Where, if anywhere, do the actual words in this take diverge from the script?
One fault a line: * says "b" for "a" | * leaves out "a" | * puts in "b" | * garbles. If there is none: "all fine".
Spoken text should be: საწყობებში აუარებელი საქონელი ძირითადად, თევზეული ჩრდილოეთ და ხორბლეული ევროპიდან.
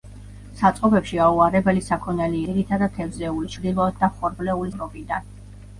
all fine